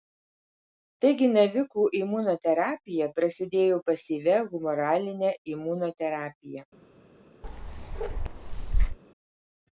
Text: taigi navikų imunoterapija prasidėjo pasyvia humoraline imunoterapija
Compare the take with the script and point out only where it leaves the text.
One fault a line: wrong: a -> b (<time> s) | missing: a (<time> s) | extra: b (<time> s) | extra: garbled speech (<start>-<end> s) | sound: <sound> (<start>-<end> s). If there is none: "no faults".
sound: bark (7.4-9.0 s)